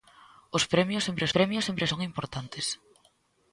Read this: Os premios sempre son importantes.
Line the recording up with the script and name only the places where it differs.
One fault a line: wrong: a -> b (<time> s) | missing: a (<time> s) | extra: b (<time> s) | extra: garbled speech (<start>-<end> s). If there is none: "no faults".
extra: premios sempre (1.4 s)